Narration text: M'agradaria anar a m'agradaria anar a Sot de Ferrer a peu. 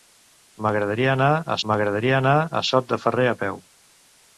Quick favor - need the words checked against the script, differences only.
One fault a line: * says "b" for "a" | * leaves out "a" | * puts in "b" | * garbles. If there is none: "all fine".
all fine